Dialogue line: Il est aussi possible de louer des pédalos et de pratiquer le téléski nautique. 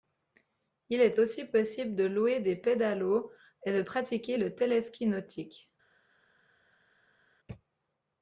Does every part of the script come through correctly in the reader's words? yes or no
yes